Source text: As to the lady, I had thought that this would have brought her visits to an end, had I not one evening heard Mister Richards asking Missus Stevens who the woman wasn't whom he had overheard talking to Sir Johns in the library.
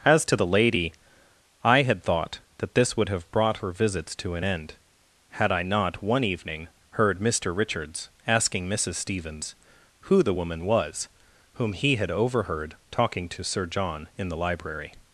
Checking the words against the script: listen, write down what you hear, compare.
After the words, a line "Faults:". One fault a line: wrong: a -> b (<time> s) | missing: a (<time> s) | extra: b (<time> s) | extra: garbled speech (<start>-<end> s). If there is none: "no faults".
As to the lady, I had thought that this would have brought her visits to an end, had I not one evening heard Mister Richards asking Missus Stevens who the woman was whom he had overheard talking to Sir John in the library.
Faults:
wrong: wasn't -> was (10.6 s)
wrong: Johns -> John (13.7 s)